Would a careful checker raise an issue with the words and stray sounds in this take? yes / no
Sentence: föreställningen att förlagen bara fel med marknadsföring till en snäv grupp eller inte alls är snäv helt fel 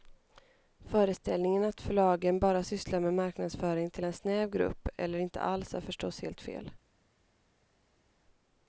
yes